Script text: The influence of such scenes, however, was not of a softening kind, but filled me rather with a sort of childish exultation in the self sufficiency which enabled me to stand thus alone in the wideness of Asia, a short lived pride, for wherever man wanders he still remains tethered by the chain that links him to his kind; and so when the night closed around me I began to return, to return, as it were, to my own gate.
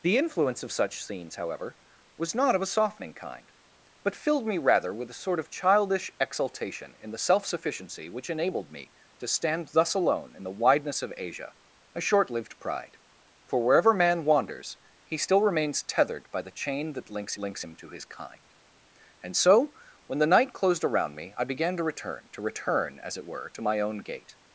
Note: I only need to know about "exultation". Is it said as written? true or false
true